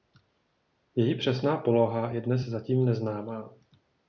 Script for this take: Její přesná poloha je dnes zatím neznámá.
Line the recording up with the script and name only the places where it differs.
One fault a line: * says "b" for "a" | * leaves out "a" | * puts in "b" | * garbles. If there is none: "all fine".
all fine